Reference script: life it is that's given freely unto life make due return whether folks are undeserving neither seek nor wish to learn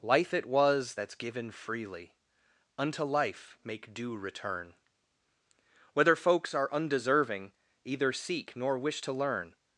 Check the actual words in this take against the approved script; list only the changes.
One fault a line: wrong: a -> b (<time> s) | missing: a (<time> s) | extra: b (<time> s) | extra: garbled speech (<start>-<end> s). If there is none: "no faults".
wrong: is -> was (0.5 s)
wrong: neither -> either (7.8 s)